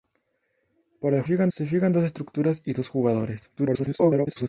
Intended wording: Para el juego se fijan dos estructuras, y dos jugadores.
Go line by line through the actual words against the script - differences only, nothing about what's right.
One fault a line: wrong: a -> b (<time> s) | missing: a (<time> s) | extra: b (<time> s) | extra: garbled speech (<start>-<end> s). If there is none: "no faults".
wrong: juego -> fijan (1.2 s)
extra: garbled speech (3.6-4.5 s)